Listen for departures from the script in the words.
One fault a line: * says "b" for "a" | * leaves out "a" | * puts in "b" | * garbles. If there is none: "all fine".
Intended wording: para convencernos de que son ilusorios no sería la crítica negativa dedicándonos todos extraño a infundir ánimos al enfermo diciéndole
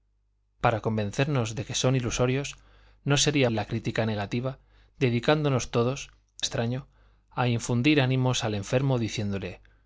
all fine